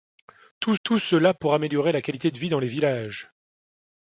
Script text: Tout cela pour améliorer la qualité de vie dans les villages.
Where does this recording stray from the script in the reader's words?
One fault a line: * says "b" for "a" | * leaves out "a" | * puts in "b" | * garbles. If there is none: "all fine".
* puts in "tout"